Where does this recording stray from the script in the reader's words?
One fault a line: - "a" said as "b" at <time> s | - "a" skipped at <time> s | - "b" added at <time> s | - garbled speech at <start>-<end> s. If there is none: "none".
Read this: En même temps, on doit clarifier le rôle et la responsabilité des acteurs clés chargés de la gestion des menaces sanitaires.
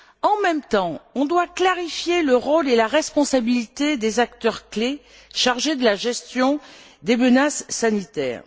none